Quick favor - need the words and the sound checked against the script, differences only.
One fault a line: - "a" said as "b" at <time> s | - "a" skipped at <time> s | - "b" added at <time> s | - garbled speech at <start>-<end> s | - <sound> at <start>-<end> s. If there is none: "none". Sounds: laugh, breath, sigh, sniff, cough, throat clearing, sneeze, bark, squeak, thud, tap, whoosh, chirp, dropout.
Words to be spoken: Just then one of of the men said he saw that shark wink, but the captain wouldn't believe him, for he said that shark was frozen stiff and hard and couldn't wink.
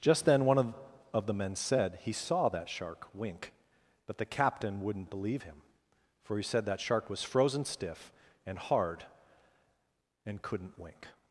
none